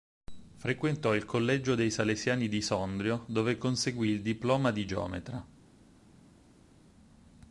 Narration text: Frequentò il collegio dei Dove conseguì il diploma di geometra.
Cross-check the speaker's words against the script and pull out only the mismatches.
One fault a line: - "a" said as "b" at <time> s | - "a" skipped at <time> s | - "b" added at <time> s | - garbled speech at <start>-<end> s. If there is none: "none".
- "Salesiani di Sondrio" added at 1.9 s